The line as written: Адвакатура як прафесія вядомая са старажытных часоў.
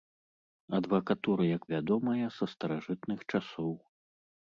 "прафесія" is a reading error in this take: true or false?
true